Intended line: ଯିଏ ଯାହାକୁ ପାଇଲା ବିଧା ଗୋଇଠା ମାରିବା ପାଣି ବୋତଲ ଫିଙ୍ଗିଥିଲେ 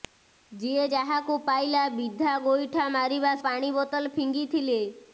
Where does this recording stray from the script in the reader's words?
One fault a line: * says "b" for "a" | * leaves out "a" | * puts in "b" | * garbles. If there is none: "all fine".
all fine